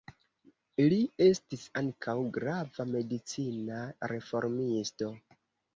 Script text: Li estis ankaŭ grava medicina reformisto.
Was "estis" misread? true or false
false